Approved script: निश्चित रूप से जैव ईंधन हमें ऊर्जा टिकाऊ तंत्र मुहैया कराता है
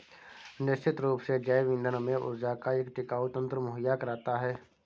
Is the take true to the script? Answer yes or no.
no